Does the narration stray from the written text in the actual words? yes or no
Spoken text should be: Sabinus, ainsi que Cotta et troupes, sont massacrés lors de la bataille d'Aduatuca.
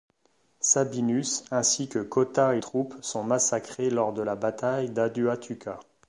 no